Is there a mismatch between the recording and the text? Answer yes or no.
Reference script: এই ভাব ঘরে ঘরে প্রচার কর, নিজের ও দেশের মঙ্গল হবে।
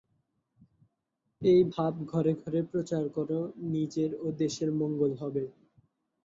no